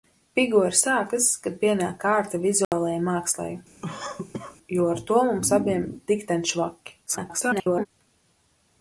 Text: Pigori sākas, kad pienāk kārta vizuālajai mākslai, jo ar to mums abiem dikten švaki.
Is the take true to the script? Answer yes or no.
no